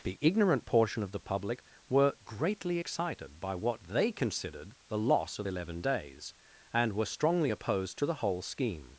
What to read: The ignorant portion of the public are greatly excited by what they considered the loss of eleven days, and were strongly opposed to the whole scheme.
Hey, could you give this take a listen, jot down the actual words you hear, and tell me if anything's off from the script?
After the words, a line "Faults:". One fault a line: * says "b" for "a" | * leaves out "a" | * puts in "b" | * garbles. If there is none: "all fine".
The ignorant portion of the public were greatly excited by what they considered the loss of eleven days, and were strongly opposed to the whole scheme.
Faults:
* says "were" for "are"